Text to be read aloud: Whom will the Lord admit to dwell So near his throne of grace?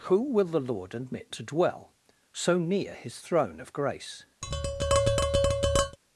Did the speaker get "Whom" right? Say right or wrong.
wrong